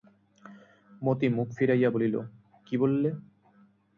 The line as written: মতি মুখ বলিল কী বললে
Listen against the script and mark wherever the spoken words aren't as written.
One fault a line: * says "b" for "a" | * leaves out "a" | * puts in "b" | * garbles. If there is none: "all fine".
* puts in "ফিরাইয়া"